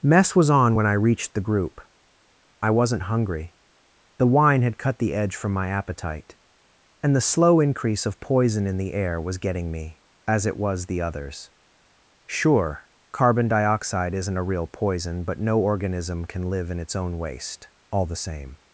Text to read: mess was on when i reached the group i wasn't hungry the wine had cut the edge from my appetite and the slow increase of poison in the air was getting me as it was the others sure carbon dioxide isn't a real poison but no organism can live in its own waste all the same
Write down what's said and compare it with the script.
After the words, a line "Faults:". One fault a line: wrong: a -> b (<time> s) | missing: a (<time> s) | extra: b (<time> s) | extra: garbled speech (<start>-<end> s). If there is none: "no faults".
mess was on when i reached the group i wasn't hungry the wine had cut the edge from my appetite and the slow increase of poison in the air was getting me as it was the others sure carbon dioxide isn't a real poison but no organism can live in its own waste all the same
Faults:
no faults